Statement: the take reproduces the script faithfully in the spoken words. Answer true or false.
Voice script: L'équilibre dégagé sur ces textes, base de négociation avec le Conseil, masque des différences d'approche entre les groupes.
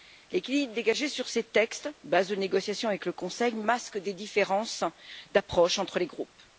true